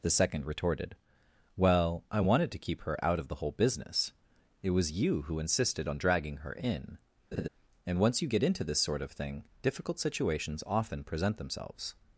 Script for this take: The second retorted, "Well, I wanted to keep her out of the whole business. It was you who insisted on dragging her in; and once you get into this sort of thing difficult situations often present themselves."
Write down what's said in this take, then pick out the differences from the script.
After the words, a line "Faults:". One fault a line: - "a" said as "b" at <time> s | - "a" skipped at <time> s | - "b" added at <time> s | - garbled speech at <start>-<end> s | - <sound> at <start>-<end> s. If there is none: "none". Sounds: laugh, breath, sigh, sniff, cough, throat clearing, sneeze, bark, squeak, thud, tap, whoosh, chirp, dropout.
The second retorted, "Well, I wanted to keep her out of the whole business. It was you who insisted on dragging her in; and once you get into this sort of thing difficult situations often present themselves."
Faults:
- laugh at 7.3-7.5 s